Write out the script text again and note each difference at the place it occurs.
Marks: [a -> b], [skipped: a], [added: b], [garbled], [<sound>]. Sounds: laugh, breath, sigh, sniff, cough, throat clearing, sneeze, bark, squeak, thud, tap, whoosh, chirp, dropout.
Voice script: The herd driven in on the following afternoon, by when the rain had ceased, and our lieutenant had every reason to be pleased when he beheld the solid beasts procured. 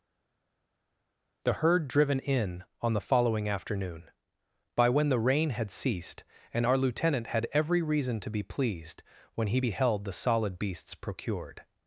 The herd driven in on the following afternoon, by when the rain had ceased, and our lieutenant had every reason to be pleased when he beheld the solid beasts procured.